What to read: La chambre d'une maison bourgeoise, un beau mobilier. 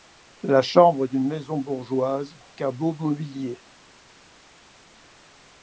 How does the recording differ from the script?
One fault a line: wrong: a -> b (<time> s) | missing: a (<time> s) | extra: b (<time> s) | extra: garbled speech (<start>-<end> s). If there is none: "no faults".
no faults